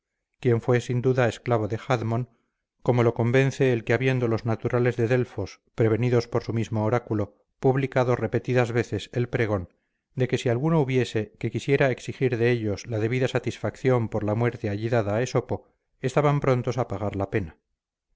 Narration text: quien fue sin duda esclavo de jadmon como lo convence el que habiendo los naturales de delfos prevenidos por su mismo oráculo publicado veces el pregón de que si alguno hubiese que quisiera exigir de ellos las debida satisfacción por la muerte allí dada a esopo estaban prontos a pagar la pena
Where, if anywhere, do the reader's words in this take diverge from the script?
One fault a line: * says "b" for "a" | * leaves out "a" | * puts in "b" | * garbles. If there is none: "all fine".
* puts in "repetidas"
* says "la" for "las"